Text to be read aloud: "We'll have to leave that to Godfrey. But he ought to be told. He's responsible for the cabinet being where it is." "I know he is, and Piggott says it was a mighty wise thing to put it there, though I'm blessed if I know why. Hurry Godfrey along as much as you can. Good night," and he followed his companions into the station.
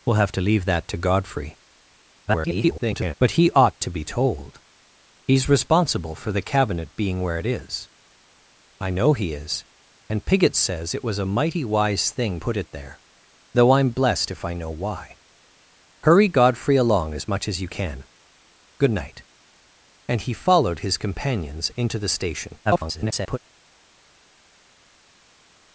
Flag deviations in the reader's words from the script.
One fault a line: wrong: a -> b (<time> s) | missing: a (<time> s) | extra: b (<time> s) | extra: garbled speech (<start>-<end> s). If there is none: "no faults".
extra: garbled speech (2.3-3.1 s)
missing: to (12.4 s)
extra: garbled speech (22.7-23.4 s)